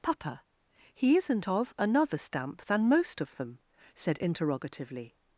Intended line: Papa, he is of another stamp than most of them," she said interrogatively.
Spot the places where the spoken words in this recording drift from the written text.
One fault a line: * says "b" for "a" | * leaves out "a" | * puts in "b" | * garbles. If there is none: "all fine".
* says "isn't" for "is"
* leaves out "she"